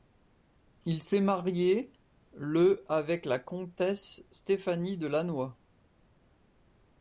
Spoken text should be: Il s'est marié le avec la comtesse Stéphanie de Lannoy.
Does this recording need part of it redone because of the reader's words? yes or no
no